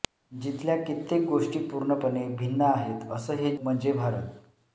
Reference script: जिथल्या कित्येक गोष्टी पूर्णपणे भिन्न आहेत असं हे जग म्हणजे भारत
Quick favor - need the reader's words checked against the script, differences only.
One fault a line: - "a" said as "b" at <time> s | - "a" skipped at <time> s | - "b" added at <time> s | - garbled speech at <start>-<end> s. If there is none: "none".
- "जग" skipped at 3.5 s